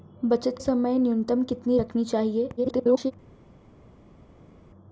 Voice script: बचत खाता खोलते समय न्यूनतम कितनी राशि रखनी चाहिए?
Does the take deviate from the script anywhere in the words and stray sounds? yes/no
yes